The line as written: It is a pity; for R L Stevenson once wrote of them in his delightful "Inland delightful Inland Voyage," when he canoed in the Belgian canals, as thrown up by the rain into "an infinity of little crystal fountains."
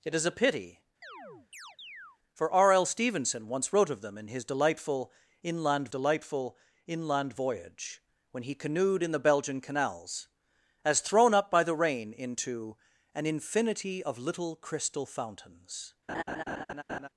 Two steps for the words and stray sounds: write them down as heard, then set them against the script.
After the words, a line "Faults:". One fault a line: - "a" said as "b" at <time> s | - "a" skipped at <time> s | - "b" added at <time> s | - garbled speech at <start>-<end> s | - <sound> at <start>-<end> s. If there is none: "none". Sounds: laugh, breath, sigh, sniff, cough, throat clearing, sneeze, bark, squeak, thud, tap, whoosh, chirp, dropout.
It is a pity; for R L Stevenson once wrote of them in his delightful "Inland delightful Inland Voyage," when he canoed in the Belgian canals, as thrown up by the rain into "an infinity of little crystal fountains."
Faults:
- chirp at 1.0-2.2 s
- laugh at 16.1-17.1 s